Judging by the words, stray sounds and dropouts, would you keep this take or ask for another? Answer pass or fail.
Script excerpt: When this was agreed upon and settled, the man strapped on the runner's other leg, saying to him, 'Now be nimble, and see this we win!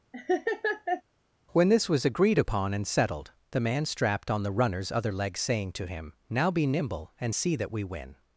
fail